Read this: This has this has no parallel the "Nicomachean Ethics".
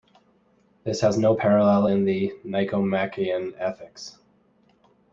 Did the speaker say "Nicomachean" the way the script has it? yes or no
yes